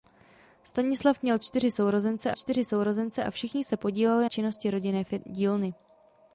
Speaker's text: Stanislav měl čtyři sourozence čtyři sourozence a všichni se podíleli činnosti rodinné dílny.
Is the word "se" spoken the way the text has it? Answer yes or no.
yes